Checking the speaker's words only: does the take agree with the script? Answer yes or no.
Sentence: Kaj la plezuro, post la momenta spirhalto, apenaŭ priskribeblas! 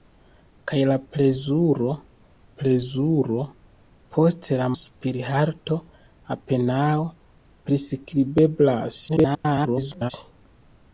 no